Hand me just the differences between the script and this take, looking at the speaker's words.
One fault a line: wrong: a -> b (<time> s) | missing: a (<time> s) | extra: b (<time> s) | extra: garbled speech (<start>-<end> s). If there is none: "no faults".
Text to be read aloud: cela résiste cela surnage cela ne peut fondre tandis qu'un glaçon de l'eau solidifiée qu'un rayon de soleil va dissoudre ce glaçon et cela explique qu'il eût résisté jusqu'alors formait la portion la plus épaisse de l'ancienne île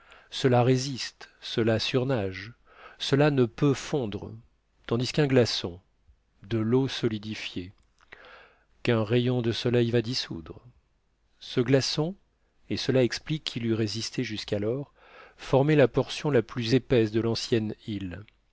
no faults